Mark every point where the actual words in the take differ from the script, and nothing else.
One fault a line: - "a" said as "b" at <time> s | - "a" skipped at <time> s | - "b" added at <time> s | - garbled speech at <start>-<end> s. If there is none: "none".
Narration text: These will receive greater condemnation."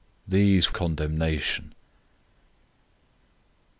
- "will receive greater" skipped at 0.7 s